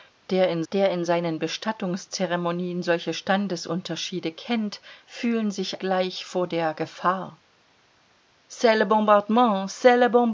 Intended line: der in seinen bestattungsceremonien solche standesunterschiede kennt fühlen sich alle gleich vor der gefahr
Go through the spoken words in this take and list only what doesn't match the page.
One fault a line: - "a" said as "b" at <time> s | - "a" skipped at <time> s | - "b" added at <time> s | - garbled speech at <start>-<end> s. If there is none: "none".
- "der in" added at 0.7 s
- "alle" skipped at 5.8 s